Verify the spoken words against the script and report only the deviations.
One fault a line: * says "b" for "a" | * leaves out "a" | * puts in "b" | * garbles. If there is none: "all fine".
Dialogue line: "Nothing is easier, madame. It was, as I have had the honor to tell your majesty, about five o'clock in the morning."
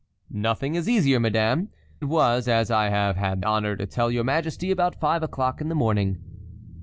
* leaves out "It"
* leaves out "the"